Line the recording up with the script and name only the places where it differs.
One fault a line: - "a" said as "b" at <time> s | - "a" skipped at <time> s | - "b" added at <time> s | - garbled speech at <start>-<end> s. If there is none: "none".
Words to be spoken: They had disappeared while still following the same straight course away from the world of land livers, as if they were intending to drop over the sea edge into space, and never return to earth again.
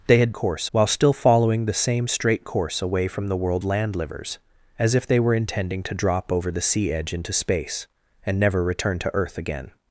- "disappeared" said as "course" at 0.3 s
- "of" skipped at 3.6 s